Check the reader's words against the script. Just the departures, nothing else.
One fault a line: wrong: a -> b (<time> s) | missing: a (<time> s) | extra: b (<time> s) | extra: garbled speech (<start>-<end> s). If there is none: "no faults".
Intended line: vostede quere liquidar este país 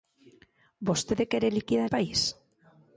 missing: este (1.9 s)